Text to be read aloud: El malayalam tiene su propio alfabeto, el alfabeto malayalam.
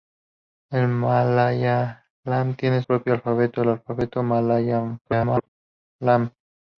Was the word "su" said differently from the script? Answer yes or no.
yes